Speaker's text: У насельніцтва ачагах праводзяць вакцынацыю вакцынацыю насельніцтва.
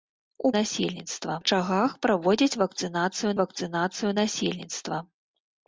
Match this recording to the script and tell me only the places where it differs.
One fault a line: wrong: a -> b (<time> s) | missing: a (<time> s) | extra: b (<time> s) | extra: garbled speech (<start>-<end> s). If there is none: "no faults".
no faults